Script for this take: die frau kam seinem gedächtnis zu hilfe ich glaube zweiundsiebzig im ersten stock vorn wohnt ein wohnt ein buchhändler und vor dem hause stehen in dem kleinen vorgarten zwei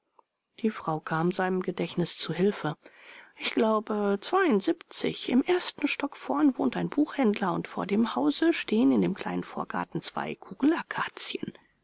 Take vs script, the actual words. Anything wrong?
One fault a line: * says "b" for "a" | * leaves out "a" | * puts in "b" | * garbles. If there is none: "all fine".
* leaves out "wohnt ein"